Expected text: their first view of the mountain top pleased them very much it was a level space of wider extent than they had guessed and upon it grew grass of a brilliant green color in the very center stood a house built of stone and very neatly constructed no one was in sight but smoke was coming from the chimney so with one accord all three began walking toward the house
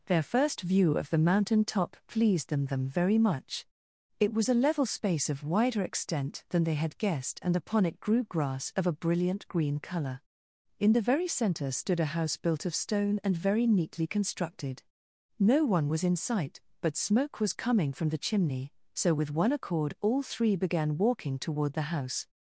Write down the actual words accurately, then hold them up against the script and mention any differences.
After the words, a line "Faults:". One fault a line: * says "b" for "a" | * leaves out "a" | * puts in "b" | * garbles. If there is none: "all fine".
their first view of the mountain top pleased them them very much it was a level space of wider extent than they had guessed and upon it grew grass of a brilliant green color in the very center stood a house built of stone and very neatly constructed no one was in sight but smoke was coming from the chimney so with one accord all three began walking toward the house
Faults:
* puts in "them"